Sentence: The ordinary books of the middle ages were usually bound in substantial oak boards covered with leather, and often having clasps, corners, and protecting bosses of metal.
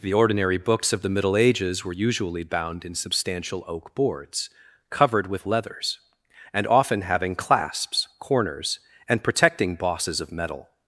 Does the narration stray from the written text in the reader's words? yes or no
yes